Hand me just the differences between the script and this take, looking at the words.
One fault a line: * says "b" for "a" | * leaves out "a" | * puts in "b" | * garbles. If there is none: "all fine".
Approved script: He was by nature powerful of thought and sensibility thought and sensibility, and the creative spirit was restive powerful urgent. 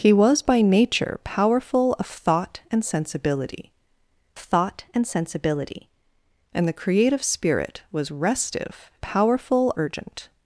all fine